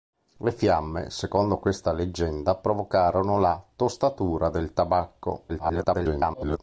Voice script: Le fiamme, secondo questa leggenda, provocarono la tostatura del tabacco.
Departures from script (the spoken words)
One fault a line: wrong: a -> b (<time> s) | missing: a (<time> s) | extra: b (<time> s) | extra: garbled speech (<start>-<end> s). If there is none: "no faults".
extra: garbled speech (5.5-6.6 s)